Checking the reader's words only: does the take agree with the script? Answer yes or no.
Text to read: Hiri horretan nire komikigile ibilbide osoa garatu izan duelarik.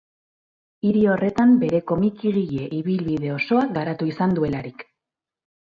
no